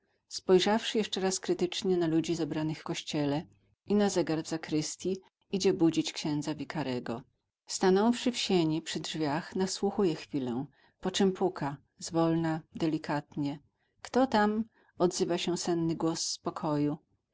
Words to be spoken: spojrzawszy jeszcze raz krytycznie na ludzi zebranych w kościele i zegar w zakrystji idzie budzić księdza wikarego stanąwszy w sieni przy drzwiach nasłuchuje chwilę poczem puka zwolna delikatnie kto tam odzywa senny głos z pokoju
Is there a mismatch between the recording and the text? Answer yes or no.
yes